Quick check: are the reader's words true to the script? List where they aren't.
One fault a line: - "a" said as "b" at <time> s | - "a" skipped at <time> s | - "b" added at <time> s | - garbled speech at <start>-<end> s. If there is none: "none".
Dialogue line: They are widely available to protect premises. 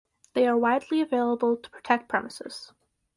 none